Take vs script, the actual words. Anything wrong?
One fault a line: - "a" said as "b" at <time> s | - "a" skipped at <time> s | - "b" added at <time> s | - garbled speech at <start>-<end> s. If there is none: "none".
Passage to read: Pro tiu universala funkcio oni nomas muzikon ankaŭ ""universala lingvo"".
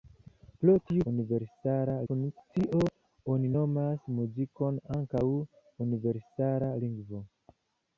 none